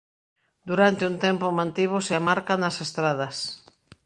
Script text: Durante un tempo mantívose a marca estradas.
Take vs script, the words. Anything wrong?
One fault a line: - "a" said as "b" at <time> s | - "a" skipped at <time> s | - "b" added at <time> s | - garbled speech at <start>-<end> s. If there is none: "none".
- "nas" added at 2.6 s